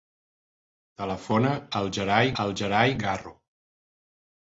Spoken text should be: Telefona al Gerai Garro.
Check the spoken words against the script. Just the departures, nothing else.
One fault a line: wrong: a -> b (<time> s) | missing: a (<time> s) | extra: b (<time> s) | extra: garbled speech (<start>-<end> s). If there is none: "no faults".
extra: al Gerai (2.4 s)